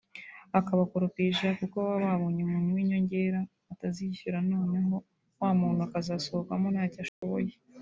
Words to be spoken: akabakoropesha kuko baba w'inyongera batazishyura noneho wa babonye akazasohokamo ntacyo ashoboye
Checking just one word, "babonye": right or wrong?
wrong